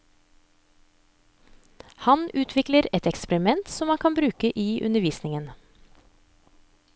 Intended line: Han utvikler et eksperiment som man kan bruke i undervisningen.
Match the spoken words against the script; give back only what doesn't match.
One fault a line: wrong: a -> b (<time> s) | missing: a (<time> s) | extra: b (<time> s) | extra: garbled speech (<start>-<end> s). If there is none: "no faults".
no faults